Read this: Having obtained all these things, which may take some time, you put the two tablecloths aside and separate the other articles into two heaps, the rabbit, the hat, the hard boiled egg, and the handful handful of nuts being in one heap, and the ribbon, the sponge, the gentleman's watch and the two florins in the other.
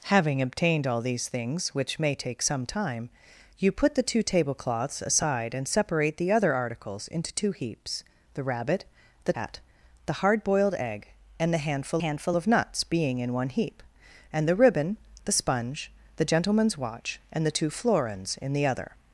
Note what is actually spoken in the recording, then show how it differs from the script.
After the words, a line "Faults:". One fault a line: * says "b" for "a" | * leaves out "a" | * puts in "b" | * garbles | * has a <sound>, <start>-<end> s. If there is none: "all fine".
Having obtained all these things, which may take some time, you put the two tablecloths aside and separate the other articles into two heaps, the rabbit, the hat, the hard boiled egg, and the handful handful of nuts being in one heap, and the ribbon, the sponge, the gentleman's watch and the two florins in the other.
Faults:
all fine